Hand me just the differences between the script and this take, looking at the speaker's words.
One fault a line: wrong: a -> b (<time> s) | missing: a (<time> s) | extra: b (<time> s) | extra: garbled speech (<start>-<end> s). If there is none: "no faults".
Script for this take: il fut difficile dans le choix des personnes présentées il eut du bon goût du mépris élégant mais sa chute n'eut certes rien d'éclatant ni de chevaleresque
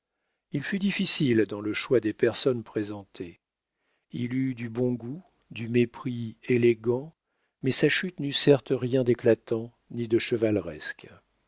no faults